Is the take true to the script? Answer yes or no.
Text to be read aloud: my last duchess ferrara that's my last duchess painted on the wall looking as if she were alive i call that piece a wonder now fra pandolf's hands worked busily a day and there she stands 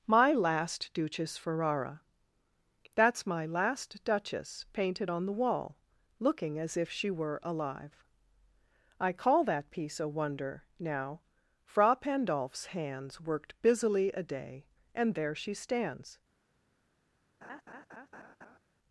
yes